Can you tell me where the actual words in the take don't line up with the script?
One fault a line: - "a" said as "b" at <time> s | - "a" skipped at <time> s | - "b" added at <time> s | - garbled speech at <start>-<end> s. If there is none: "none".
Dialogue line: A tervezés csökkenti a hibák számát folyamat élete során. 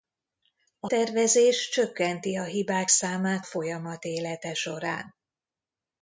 none